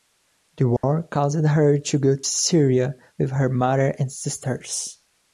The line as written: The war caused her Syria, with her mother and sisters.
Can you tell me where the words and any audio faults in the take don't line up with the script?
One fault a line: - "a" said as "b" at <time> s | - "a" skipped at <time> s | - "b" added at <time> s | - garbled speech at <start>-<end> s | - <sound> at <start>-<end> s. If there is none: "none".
- dropout at 0.8-0.8 s
- "to go to" added at 1.8 s